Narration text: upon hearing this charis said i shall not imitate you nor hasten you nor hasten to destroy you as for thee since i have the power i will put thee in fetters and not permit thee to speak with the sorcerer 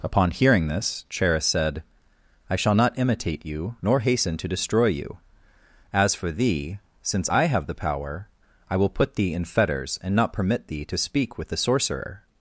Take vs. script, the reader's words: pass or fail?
fail